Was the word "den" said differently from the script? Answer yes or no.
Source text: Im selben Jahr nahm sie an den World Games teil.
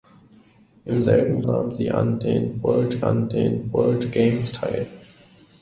no